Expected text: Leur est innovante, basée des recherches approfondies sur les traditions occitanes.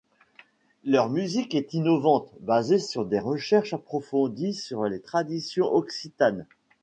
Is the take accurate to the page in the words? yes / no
no